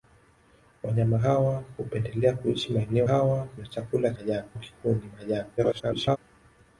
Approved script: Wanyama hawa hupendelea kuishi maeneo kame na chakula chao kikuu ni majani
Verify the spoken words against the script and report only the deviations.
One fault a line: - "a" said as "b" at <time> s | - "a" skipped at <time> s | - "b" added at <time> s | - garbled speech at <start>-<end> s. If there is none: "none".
- "kame" said as "hawa" at 3.0 s
- "chao" said as "majani" at 4.2 s
- garbled speech at 5.6-6.2 s